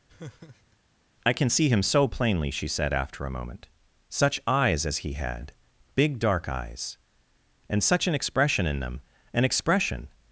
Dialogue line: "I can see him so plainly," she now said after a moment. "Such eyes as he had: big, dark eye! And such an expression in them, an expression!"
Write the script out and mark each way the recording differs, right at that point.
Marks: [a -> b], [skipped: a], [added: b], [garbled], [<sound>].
[laugh] "I can see him so plainly," she [skipped: now] said after a moment. "Such eyes as he had: big, dark [eye! -> eyes] And such an expression in them, an expression!"